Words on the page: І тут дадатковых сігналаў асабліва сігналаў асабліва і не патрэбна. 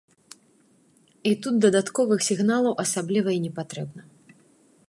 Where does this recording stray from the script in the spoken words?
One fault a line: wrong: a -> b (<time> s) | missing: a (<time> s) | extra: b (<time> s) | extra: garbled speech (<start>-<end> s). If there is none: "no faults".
missing: сігналаў асабліва (3.3 s)